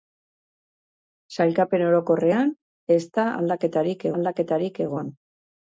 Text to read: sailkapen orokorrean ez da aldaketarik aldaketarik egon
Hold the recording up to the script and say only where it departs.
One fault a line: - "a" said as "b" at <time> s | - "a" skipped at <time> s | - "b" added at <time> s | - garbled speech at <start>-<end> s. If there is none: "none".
none